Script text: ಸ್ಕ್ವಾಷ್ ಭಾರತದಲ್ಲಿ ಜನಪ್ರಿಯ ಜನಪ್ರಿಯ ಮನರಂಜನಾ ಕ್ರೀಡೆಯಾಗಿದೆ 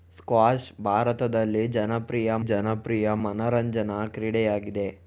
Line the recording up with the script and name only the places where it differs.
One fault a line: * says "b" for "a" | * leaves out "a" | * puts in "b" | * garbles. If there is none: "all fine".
all fine